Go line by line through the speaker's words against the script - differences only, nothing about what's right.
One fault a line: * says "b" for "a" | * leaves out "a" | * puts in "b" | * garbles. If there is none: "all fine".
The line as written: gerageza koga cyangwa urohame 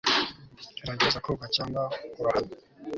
all fine